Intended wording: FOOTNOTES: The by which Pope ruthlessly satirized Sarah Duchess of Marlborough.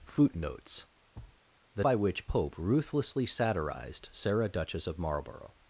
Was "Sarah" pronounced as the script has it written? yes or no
yes